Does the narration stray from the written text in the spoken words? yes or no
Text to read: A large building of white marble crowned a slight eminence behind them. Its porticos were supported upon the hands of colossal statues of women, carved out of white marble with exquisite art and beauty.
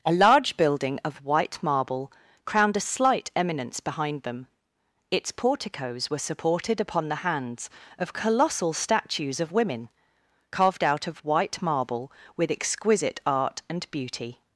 no